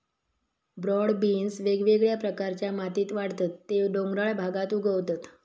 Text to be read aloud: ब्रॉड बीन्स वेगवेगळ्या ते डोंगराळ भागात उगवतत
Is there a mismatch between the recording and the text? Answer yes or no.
yes